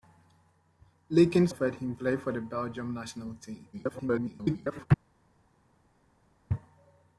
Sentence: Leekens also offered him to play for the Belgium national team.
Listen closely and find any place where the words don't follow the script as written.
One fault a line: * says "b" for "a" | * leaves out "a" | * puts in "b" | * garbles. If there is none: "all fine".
* leaves out "also"
* leaves out "to"
* garbles